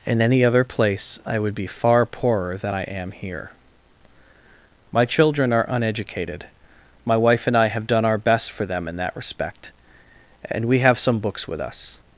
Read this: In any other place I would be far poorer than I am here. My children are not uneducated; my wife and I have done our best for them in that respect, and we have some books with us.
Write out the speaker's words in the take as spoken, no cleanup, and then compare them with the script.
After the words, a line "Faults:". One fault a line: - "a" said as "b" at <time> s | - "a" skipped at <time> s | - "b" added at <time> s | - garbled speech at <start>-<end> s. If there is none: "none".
In any other place I would be far poorer than I am here. My children are uneducated; my wife and I have done our best for them in that respect, and we have some books with us.
Faults:
- "not" skipped at 5.7 s